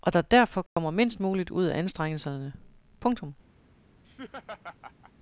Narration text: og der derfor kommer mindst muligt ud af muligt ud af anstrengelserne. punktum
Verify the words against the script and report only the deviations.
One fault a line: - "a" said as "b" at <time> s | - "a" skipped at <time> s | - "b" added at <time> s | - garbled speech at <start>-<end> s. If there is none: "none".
- "muligt ud af" skipped at 1.8 s